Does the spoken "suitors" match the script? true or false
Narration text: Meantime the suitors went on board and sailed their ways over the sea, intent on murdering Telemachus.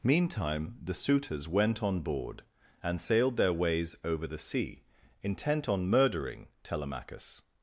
true